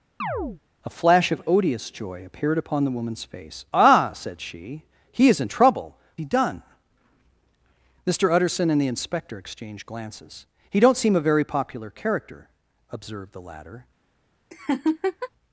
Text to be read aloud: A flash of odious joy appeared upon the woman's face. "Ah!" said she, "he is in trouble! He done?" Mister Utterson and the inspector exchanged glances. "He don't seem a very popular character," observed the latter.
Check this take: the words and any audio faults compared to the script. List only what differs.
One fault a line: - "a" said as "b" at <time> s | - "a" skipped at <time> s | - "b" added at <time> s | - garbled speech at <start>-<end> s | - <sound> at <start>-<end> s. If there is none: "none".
- chirp at 0.2-0.6 s
- laugh at 14.5-15.3 s